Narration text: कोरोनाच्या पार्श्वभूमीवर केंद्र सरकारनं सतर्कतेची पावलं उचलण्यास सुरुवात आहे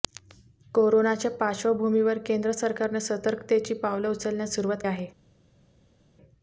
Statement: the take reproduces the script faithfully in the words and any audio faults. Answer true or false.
true